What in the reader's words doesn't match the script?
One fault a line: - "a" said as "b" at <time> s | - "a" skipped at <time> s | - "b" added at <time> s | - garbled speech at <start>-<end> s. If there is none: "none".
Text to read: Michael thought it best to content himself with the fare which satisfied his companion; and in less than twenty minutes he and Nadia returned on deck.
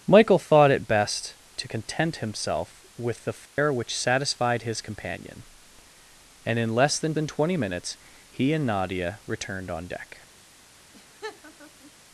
- "than" added at 7.1 s